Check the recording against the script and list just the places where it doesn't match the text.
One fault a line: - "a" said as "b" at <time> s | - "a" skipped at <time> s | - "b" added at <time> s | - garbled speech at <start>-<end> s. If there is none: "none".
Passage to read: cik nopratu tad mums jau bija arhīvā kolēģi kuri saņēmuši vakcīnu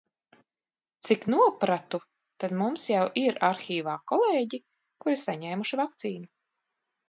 - "bija" said as "ir" at 3.2 s